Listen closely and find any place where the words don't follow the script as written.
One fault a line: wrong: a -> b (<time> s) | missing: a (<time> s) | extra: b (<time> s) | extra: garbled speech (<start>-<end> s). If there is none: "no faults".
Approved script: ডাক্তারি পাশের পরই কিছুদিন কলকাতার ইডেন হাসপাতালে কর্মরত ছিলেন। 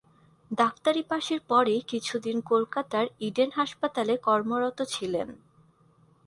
no faults